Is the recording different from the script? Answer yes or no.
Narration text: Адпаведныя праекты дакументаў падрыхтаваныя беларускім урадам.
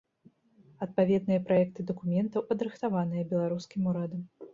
no